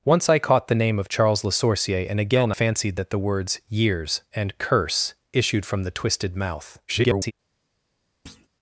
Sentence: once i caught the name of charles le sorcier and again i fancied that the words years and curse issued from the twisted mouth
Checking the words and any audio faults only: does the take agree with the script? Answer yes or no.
no